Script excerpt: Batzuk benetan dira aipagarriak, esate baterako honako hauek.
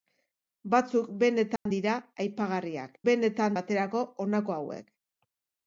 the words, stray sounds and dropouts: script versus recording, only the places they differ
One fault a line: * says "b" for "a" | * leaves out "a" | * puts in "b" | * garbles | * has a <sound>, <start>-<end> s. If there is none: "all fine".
* has a dropout, 1.6-1.7 s
* says "benetan" for "esate"